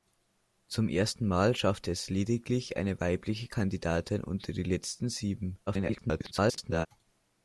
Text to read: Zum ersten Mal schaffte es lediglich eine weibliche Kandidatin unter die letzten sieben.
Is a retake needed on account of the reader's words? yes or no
yes